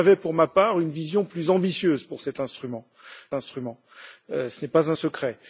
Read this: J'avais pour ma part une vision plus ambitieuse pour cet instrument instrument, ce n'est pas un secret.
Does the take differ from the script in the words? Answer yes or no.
no